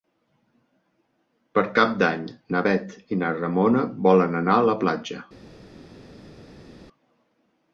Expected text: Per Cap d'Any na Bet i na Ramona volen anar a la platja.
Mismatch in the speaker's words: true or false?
false